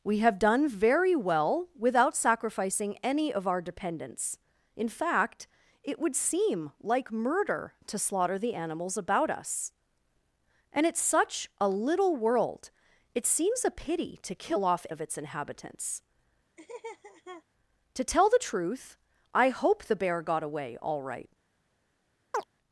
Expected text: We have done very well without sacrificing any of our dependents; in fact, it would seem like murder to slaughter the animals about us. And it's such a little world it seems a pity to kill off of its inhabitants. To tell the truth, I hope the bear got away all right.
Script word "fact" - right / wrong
right